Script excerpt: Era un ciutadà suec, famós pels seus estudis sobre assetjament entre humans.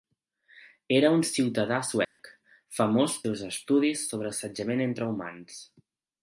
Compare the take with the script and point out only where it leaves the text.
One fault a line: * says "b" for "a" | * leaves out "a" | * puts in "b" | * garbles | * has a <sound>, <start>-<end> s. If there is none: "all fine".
* has a dropout, 2.0-2.2 s
* leaves out "pels"